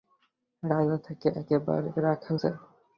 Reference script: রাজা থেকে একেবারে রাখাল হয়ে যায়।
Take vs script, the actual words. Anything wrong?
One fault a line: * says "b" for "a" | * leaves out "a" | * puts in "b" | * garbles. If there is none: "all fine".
* leaves out "হয়ে"